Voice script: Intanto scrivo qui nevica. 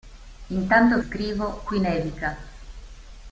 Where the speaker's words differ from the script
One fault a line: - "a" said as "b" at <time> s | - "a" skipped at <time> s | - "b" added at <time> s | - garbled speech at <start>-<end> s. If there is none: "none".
none